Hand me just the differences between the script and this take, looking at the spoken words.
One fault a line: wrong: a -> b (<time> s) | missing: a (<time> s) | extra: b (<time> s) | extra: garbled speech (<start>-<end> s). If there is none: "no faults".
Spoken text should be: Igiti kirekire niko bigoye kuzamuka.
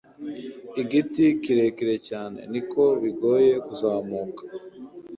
extra: cyane (2.1 s)